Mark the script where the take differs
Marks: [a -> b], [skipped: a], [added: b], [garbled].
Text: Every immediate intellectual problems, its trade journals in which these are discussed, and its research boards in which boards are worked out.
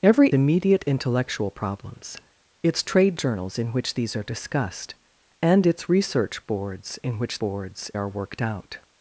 Every immediate intellectual problems, its trade journals in which these are discussed, and its research boards in which boards are worked out.